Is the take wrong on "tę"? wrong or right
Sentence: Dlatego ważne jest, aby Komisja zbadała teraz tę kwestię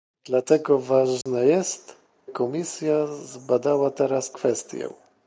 wrong